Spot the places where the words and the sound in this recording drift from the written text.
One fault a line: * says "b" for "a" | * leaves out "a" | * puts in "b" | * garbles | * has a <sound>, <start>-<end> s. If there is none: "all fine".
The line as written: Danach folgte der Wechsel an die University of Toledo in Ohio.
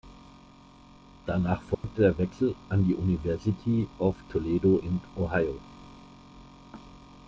* has a dropout, 1.7-1.8 s